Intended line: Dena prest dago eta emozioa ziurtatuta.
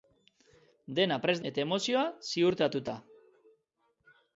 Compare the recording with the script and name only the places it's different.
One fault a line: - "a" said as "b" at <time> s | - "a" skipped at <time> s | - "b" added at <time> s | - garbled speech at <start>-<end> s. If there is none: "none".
- "dago" skipped at 1.4 s